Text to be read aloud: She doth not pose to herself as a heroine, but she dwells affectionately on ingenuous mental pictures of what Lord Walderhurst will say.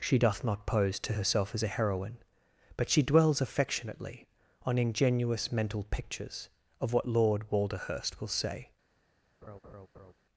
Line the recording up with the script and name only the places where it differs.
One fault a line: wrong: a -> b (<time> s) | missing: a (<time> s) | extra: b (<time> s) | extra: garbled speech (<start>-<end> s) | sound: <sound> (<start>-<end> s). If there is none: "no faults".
sound: laugh (9.4-10.1 s)